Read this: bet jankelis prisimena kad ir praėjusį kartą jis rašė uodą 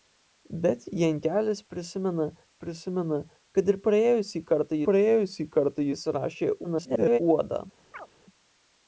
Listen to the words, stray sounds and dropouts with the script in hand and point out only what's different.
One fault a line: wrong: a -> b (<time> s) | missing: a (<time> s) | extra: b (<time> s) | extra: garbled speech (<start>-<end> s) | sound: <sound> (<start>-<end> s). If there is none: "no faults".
extra: prisimena (2.6 s)
extra: praėjusį kartą (4.9 s)
extra: garbled speech (6.6-7.2 s)
sound: chirp (7.9-8.1 s)